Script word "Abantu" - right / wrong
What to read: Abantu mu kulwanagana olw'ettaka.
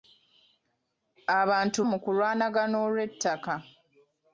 right